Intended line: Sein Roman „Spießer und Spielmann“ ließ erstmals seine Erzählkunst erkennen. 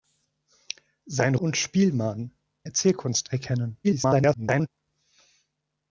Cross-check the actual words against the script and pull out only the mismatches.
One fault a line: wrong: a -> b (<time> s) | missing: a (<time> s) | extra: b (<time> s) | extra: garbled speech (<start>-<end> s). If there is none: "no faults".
missing: Roman Spießer (1.4 s)
missing: ließ erstmals seine (2.3 s)
extra: garbled speech (3.8-4.7 s)